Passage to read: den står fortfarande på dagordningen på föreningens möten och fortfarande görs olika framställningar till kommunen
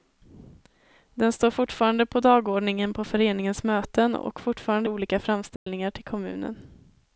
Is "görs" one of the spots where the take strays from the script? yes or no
yes